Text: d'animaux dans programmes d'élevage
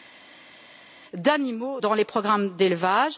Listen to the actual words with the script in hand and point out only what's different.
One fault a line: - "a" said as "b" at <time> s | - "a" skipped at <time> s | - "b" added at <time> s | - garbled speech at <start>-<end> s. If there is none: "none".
- "les" added at 1.9 s